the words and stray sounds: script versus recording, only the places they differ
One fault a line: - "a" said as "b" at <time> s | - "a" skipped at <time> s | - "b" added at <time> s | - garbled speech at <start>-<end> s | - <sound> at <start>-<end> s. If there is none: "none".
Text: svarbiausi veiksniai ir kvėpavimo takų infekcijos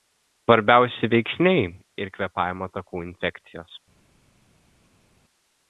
none